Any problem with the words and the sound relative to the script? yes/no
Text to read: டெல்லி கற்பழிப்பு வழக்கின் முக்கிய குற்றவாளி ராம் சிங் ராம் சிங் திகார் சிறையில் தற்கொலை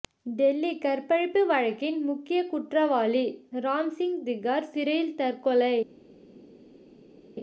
yes